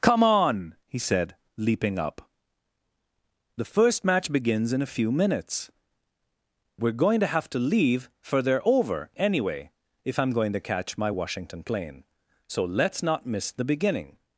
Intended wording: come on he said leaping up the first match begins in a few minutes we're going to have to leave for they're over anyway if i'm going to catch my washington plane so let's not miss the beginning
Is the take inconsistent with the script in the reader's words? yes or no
no